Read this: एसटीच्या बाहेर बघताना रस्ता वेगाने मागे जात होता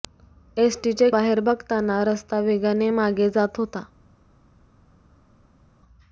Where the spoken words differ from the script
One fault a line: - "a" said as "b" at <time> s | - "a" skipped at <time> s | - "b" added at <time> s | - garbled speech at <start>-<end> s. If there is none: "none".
none